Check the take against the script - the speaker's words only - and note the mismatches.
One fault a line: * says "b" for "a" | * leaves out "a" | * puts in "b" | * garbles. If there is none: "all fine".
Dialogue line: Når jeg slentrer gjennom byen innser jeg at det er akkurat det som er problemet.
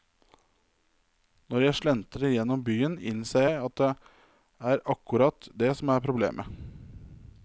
all fine